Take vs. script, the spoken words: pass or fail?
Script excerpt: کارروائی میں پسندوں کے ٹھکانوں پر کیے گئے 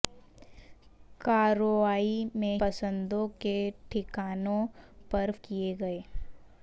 pass